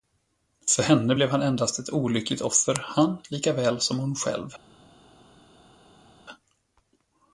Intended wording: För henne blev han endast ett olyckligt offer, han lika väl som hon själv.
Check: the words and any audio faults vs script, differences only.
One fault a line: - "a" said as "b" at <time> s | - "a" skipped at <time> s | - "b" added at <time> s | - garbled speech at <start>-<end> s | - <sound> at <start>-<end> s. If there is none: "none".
none